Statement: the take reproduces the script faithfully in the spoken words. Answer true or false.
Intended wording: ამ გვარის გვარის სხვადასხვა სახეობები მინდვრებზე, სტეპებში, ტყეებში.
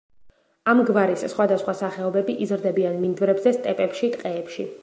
false